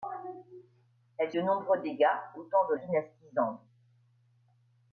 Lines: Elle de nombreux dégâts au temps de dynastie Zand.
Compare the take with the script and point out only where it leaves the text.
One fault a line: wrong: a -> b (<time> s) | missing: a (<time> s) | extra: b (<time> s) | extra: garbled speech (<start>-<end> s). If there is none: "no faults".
no faults